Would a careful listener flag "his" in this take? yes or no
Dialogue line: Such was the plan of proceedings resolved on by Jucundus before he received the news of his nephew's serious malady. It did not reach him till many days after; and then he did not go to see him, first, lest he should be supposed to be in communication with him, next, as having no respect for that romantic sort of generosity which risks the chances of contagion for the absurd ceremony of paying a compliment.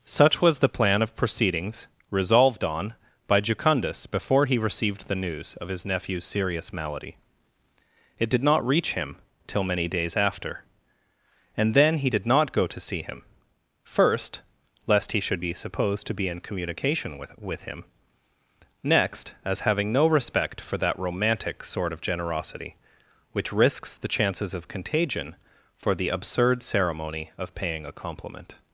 no